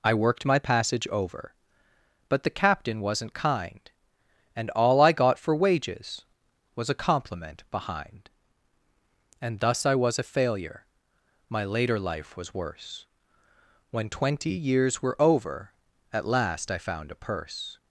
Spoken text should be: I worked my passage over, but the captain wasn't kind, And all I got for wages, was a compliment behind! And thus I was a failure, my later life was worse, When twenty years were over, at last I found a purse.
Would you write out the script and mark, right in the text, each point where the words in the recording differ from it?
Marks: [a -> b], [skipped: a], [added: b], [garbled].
I worked my passage over, but the captain wasn't kind, And all I got for wages, was a compliment behind! And thus I was a failure, my later life was worse, When twenty years were over, at last I found a purse.